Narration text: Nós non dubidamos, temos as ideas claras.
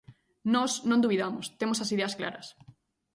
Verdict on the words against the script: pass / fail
pass